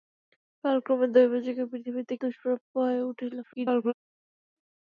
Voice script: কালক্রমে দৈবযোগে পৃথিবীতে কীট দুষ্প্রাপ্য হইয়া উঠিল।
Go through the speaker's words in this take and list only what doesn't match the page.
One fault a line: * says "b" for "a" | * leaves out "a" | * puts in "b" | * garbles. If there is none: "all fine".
* leaves out "কীট"
* garbles